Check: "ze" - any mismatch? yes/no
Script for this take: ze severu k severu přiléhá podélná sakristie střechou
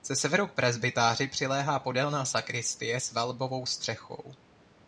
no